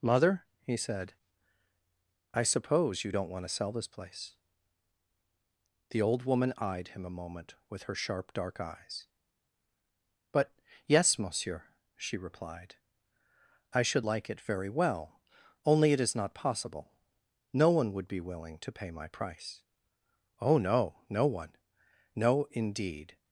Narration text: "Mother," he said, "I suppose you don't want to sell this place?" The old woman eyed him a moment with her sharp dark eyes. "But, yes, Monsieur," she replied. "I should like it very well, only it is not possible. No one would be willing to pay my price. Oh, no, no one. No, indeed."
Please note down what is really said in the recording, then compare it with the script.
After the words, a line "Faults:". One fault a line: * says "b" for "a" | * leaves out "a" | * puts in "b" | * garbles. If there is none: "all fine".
"Mother," he said, "I suppose you don't want to sell this place?" The old woman eyed him a moment with her sharp dark eyes. "But, yes, Monsieur," she replied. "I should like it very well, only it is not possible. No one would be willing to pay my price. Oh, no, no one. No, indeed."
Faults:
all fine